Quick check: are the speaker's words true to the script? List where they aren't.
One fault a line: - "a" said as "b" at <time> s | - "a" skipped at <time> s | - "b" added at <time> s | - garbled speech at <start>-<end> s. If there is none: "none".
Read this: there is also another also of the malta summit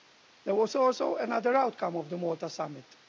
- "is" said as "was" at 0.6 s
- "also" said as "outcome" at 1.5 s